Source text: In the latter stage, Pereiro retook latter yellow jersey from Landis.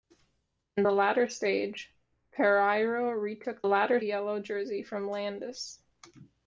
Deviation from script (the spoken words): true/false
false